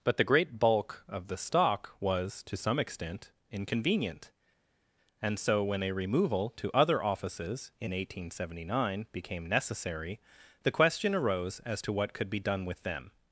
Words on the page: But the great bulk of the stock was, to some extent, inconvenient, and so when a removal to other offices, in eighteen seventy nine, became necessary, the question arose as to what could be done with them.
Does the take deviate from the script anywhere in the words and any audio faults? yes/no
no